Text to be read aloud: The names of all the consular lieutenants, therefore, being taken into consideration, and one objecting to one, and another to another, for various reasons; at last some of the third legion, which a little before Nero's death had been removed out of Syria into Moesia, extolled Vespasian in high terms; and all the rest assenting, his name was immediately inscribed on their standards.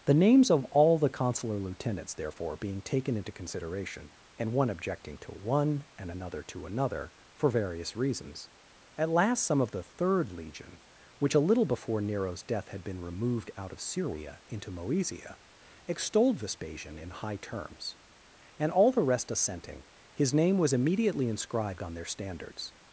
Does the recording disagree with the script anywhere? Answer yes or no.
no